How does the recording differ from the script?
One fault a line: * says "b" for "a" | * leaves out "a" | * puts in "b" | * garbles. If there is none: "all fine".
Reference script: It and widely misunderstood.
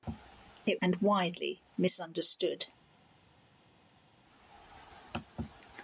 all fine